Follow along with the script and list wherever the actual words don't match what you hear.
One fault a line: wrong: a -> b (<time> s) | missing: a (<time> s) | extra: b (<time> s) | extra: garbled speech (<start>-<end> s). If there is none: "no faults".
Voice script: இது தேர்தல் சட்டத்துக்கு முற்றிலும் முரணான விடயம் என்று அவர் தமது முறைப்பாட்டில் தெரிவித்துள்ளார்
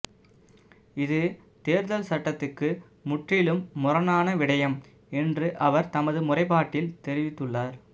no faults